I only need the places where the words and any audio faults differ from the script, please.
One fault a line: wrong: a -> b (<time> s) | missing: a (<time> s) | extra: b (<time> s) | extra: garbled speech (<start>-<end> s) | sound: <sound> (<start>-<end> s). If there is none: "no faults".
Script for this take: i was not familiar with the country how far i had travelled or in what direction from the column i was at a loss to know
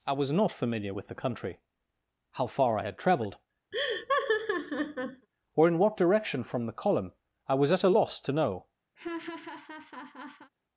sound: laugh (3.7-5.3 s)
sound: laugh (9.0-10.5 s)